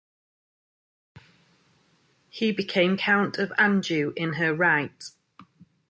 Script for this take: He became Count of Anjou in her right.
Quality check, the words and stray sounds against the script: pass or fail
pass